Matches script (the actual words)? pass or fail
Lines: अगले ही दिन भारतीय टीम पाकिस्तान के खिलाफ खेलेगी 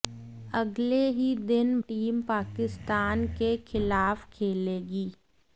fail